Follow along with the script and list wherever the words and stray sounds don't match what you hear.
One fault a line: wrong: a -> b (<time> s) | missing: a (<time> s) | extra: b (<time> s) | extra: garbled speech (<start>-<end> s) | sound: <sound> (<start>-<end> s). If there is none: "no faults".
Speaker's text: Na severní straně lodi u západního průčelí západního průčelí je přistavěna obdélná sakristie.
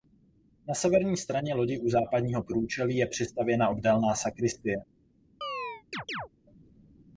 missing: západního průčelí (3.0 s)
sound: chirp (5.4-6.3 s)